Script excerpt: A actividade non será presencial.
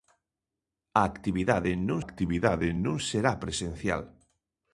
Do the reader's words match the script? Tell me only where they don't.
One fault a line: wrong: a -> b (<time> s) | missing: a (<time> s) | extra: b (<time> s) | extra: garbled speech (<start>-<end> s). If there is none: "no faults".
extra: actividade non (2.0 s)